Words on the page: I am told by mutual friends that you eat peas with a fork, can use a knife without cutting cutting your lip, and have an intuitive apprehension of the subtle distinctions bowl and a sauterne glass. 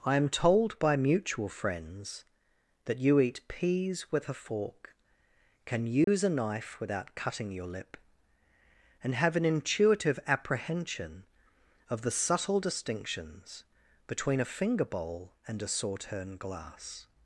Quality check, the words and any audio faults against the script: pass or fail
fail